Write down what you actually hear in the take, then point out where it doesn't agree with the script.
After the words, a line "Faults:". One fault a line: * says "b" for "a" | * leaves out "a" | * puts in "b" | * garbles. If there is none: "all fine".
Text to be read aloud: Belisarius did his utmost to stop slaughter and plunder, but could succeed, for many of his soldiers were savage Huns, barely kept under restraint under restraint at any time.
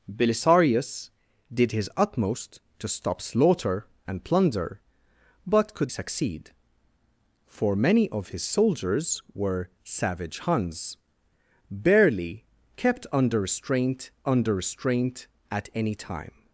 Belisarius did his utmost to stop slaughter and plunder, but could succeed, for many of his soldiers were savage Huns, barely kept under restraint under restraint at any time.
Faults:
all fine